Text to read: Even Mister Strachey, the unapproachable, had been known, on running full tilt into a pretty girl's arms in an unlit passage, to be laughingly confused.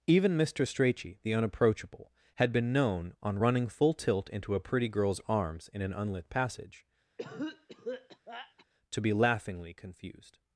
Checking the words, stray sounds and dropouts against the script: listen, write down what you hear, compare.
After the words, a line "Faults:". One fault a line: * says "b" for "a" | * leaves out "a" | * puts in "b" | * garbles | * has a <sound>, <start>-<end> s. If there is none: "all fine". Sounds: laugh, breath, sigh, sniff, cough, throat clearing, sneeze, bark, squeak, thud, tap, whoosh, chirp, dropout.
Even Mister Strachey, the unapproachable, had been known, on running full tilt into a pretty girl's arms in an unlit passage, to be laughingly confused.
Faults:
* has a cough, 7.2-8.7 s